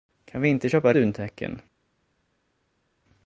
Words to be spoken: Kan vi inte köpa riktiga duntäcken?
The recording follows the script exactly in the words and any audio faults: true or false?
false